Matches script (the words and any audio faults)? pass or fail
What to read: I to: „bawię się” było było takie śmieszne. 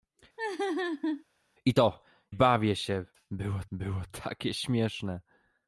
fail